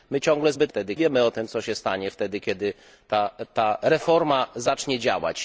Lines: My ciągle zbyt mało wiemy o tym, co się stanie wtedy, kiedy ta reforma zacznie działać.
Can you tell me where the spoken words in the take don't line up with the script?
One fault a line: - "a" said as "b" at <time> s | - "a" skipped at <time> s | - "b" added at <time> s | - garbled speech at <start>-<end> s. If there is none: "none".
- "mało" said as "wtedy" at 0.7 s